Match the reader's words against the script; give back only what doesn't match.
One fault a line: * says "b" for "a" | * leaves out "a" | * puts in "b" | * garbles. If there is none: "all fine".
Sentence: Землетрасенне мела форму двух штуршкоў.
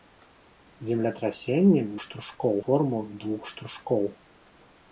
* says "штуршкоў" for "мела"